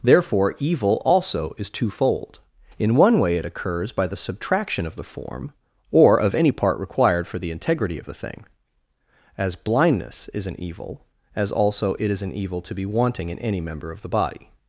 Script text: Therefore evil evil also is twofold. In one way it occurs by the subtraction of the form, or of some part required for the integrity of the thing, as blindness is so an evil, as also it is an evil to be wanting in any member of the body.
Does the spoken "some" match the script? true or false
false